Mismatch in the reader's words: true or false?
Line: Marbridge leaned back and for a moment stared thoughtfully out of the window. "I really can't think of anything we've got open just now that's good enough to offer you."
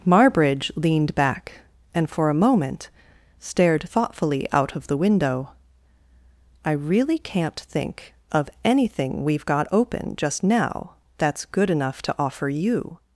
false